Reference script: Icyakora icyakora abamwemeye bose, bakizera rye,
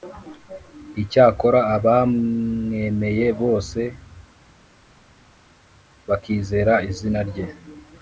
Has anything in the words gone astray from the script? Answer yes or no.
yes